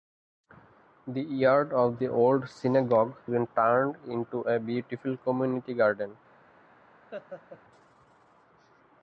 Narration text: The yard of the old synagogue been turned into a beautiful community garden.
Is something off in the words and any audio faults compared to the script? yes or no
yes